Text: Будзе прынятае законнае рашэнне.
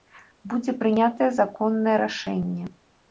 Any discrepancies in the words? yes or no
no